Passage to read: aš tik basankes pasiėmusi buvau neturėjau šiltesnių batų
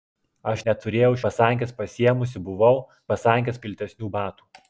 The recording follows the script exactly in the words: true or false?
false